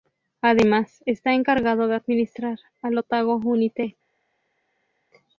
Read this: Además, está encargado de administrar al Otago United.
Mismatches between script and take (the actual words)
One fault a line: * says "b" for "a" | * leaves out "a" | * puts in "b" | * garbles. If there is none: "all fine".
all fine